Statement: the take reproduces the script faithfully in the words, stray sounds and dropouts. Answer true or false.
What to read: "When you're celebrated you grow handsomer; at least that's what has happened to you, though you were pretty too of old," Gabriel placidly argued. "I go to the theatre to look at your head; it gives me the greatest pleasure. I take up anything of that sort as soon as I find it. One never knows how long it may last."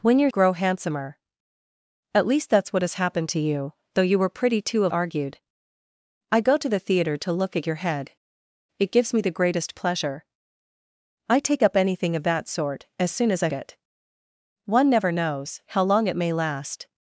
false